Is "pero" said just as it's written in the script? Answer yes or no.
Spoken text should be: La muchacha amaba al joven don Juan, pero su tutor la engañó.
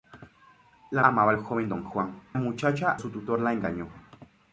no